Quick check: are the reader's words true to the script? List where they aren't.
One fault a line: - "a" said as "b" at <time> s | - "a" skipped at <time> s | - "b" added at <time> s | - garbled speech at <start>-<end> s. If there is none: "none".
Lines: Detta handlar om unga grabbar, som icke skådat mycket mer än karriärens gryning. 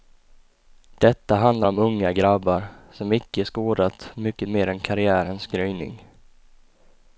none